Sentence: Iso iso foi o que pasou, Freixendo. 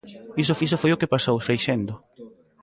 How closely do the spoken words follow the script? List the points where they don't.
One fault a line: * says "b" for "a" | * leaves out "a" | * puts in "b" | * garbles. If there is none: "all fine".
all fine